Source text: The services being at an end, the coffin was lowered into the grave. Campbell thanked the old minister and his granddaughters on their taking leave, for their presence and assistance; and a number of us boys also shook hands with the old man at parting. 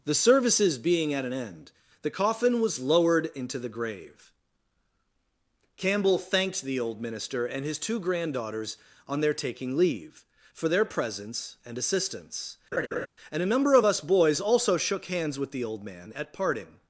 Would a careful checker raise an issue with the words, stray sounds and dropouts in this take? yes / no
yes